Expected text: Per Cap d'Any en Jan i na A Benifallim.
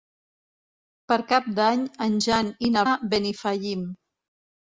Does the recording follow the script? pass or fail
pass